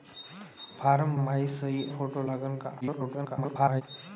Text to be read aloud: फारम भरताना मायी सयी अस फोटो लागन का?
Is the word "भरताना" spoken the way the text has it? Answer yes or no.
no